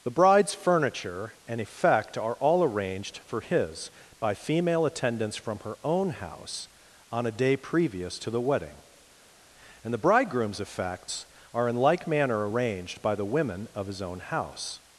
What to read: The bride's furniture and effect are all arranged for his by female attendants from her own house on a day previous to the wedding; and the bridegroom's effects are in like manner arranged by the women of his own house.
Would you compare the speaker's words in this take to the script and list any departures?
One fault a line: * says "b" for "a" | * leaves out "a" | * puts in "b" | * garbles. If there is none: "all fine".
all fine